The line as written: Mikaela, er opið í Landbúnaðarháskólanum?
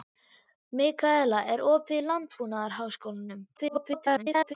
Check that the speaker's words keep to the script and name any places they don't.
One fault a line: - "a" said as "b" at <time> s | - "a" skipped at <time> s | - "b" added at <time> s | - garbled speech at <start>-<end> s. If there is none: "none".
- garbled speech at 3.6-4.5 s